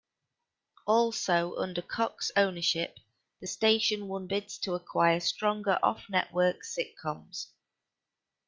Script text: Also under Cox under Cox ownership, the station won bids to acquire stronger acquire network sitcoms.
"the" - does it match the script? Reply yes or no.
yes